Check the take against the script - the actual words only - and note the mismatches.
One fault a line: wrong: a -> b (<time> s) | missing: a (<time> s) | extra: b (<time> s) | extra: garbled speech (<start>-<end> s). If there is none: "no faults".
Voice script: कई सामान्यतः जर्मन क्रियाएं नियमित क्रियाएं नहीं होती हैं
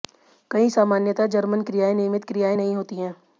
no faults